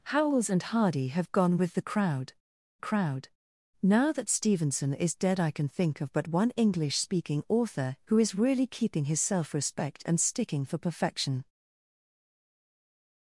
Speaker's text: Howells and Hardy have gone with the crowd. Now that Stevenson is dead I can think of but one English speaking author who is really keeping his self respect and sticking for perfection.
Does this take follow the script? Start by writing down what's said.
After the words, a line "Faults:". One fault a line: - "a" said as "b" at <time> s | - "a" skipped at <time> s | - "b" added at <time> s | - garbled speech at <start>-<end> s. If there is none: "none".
Howells and Hardy have gone with the crowd crowd. Now that Stevenson is dead I can think of but one English speaking author who is really keeping his self respect and sticking for perfection.
Faults:
- "crowd" added at 2.8 s